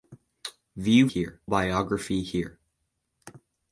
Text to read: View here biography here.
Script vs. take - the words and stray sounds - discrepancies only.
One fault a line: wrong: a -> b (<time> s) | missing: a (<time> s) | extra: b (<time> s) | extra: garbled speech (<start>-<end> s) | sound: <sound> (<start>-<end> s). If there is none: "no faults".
no faults